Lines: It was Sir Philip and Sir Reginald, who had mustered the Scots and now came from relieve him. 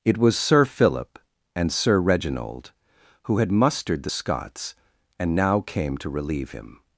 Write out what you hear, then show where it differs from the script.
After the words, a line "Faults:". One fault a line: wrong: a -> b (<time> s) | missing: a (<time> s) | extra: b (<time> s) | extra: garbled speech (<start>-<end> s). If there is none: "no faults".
It was Sir Philip and Sir Reginald, who had mustered the Scots and now came to relieve him.
Faults:
wrong: from -> to (6.0 s)